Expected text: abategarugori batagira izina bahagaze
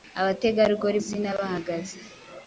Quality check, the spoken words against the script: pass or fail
fail